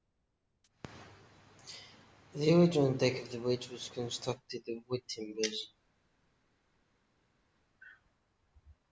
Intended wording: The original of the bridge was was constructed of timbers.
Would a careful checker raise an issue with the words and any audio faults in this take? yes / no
yes